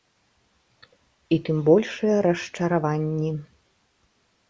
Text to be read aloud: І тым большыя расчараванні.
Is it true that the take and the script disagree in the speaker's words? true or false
false